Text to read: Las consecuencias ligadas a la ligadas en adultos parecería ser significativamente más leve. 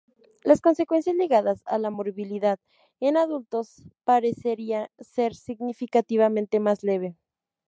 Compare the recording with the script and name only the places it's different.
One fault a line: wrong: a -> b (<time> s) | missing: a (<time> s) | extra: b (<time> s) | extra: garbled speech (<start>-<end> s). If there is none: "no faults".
wrong: ligadas -> morbilidad (1.9 s)